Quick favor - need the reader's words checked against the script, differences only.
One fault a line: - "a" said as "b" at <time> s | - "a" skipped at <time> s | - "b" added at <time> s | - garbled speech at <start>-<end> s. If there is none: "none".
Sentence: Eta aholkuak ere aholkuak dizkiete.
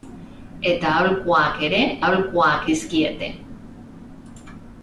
none